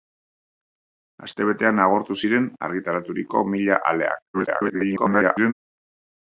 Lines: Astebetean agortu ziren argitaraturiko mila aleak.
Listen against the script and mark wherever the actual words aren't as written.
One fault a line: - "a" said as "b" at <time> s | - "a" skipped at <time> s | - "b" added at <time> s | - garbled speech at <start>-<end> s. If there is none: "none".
- garbled speech at 4.3-5.5 s